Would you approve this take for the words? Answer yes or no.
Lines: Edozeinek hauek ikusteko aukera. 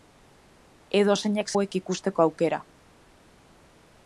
yes